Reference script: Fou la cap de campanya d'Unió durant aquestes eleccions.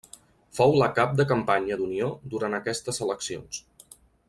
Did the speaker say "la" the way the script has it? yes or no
yes